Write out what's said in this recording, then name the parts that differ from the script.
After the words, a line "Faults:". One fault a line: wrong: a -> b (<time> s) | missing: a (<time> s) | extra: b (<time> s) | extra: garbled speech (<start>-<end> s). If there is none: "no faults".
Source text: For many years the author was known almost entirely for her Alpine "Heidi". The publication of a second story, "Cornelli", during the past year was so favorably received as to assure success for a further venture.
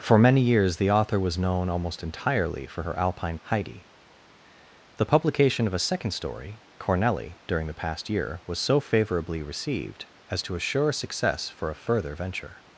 For many years the author was known almost entirely for her Alpine "Heidi". The publication of a second story, "Cornelli", during the past year was so favorably received as to assure success for a further venture.
Faults:
no faults